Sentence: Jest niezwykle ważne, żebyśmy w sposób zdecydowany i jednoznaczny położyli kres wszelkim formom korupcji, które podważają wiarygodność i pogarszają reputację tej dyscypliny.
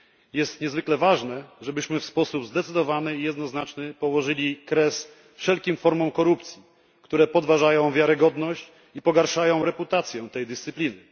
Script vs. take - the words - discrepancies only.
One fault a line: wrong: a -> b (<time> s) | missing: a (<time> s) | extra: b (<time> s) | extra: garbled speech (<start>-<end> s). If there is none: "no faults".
no faults